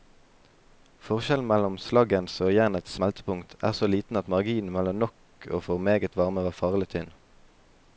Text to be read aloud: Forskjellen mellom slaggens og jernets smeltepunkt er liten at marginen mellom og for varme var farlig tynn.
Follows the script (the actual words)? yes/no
no